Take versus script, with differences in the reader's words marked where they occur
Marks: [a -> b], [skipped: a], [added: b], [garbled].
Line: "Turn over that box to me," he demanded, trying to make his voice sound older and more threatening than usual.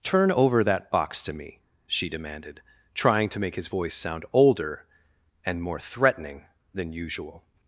"Turn over that box to me," [he -> she] demanded, trying to make his voice sound older and more threatening than usual.